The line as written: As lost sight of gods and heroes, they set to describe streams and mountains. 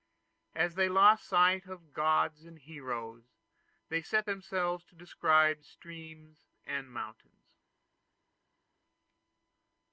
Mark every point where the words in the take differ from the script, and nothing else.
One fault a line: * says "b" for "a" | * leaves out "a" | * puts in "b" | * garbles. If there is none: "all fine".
* puts in "they"
* puts in "themselves"